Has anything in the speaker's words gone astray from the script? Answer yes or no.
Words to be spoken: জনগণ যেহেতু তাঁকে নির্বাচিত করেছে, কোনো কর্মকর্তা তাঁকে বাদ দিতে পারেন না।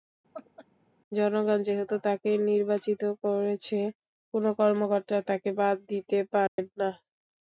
no